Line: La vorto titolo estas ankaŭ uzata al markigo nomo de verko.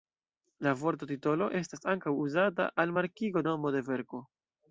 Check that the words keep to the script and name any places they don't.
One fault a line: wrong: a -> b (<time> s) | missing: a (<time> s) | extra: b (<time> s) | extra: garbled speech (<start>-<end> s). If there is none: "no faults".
no faults